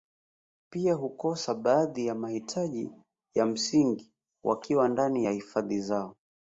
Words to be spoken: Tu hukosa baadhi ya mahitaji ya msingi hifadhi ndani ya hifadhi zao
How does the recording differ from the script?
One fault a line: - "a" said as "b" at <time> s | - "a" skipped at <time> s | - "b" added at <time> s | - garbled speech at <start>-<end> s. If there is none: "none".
- "Tu" said as "Pia" at 0.7 s
- "hifadhi" said as "wakiwa" at 4.4 s